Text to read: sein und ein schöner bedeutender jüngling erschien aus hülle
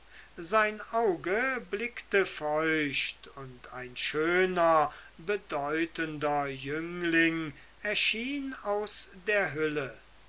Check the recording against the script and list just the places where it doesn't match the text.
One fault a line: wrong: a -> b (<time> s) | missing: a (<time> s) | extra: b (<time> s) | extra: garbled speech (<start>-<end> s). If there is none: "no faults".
extra: auge blickte feucht (0.9 s)
extra: der (9.1 s)